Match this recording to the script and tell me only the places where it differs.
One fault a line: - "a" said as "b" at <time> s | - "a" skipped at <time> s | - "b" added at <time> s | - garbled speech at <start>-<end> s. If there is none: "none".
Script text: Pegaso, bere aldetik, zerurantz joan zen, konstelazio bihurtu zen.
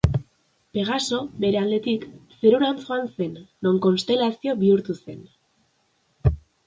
- "non" added at 3.7 s